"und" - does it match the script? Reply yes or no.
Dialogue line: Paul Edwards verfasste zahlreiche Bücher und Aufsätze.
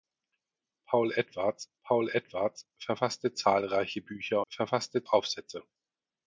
no